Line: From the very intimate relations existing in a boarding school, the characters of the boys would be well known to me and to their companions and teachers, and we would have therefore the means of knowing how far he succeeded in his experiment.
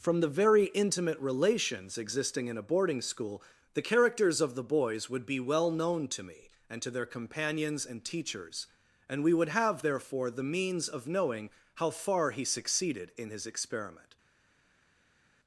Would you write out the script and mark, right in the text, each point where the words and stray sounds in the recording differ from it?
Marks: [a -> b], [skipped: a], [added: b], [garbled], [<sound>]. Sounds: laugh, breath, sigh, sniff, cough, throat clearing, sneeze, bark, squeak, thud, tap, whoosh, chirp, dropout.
From the very intimate relations existing in a boarding school, the characters of the boys would be well known to me and to their companions and teachers, and we would have therefore the means of knowing how far he succeeded in his experiment.